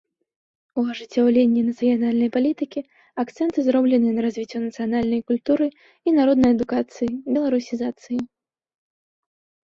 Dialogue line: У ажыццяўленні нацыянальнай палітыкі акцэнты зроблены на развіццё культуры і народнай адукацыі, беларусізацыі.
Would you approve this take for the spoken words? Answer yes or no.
no